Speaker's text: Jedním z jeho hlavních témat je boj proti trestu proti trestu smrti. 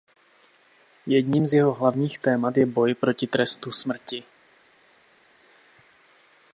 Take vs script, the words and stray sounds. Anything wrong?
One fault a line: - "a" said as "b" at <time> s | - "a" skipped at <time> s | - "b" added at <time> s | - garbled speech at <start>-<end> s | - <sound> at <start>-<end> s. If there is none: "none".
- "proti trestu" skipped at 3.7 s